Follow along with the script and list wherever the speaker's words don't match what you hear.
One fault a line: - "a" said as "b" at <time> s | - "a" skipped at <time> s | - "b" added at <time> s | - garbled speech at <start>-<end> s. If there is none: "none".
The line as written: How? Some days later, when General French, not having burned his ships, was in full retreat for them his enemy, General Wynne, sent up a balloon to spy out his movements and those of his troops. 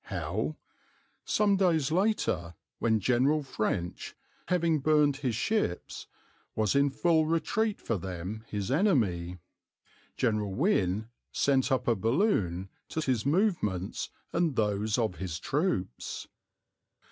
- "not" skipped at 4.2 s
- "spy out" skipped at 13.0 s